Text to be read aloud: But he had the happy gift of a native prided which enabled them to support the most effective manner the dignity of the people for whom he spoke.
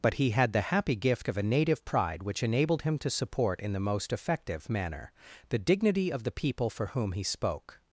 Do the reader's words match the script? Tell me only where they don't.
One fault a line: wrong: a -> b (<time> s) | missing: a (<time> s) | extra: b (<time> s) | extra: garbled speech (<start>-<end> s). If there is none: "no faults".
wrong: prided -> pride (1.9 s)
wrong: them -> him (2.8 s)
extra: in (3.6 s)